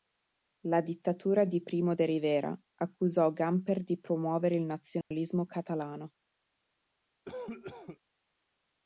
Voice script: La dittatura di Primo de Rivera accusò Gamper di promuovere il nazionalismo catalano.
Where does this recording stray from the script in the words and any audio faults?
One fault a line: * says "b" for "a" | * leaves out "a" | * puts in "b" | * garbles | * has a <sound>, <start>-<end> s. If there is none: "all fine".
* has a dropout, 5.0-5.1 s
* has a cough, 7.2-8.0 s